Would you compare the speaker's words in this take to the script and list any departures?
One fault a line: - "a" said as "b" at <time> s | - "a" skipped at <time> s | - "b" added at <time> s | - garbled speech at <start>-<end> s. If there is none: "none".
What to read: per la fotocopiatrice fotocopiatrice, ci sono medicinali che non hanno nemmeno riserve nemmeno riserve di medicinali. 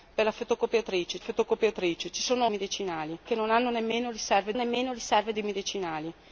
none